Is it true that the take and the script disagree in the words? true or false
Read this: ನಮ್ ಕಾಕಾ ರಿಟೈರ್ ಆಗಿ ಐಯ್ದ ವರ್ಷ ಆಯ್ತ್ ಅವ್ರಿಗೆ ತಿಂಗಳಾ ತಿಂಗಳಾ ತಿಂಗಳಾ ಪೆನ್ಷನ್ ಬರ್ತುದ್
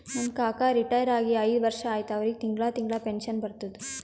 true